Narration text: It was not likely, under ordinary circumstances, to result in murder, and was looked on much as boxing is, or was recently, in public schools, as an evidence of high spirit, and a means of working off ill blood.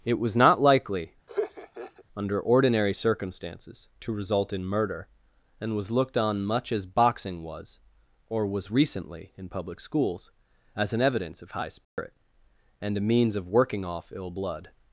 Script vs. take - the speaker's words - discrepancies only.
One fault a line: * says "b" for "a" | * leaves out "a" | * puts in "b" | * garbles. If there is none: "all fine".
* says "was" for "is"